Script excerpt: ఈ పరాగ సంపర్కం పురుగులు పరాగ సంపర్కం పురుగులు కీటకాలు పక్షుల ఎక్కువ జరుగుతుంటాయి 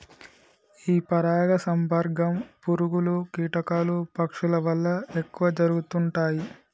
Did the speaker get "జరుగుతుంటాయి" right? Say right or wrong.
right